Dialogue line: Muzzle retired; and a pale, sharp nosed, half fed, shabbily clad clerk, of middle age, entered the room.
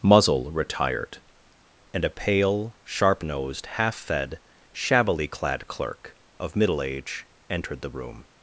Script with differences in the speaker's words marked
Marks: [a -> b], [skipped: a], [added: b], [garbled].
Muzzle retired; and a pale, sharp nosed, half fed, shabbily clad clerk, of middle age, entered the room.